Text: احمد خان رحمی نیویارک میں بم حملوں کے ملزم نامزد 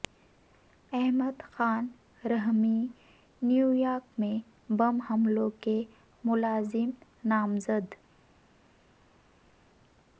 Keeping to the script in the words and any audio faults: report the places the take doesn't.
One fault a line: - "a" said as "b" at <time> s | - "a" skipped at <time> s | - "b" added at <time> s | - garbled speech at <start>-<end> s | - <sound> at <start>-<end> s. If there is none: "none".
none